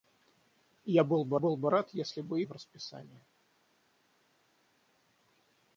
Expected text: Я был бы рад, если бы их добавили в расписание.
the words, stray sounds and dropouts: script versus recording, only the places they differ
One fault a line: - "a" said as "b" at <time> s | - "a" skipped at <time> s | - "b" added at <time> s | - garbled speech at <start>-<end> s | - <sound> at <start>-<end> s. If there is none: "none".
- "был бы" added at 1.4 s
- "их добавили" skipped at 2.4 s